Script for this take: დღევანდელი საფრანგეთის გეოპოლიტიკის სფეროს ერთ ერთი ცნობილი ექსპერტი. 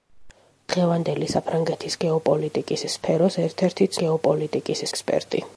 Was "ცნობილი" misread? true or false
true